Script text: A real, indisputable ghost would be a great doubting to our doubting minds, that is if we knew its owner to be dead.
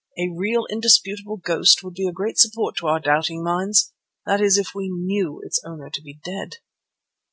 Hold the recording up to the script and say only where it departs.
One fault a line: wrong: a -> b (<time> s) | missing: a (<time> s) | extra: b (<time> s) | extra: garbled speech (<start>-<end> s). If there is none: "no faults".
wrong: doubting -> support (2.4 s)